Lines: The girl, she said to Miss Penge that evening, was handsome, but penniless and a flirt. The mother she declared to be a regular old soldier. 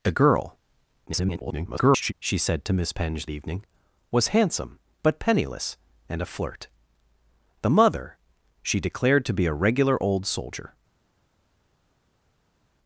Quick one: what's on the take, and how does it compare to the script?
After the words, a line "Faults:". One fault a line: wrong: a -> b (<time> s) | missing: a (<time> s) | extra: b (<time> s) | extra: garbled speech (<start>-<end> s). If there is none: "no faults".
The girl, [garbled] she said to Miss Penge evening, was handsome, but penniless and a flirt. The mother she declared to be a regular old soldier.
Faults:
extra: garbled speech (1.1-2.1 s)
missing: that (3.3 s)